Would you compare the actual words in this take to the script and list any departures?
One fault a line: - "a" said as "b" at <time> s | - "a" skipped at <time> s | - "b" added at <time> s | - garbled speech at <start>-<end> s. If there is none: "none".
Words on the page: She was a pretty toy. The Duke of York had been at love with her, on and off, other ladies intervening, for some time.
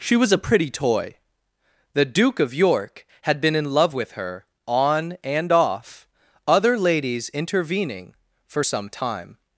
- "at" said as "in" at 3.5 s